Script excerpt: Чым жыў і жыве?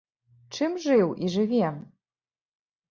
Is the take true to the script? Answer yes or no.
yes